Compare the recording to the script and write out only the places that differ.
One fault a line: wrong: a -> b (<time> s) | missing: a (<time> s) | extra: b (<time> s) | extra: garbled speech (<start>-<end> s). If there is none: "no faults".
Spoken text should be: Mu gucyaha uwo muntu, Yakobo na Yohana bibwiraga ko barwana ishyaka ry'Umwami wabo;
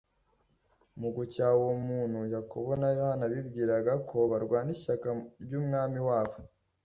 no faults